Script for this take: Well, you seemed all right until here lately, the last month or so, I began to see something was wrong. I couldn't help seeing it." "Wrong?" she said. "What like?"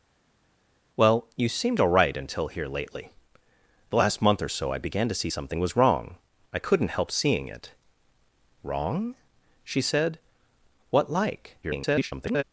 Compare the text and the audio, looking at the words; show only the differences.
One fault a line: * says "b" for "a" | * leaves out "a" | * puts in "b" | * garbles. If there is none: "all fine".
* garbles